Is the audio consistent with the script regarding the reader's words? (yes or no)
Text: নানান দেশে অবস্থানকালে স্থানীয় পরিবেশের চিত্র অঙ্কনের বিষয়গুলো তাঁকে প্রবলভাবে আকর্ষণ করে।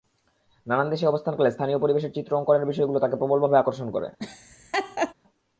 yes